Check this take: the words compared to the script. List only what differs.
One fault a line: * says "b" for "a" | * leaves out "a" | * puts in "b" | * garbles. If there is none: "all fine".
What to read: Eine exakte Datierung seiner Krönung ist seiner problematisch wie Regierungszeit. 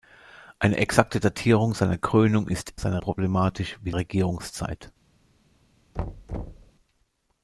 all fine